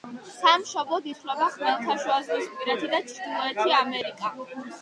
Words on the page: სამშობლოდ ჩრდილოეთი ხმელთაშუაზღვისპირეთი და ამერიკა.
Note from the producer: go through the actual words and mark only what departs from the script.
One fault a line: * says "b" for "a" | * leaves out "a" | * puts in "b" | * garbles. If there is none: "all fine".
* says "ითვლება" for "ჩრდილოეთი"
* puts in "ჩრდილოეთი"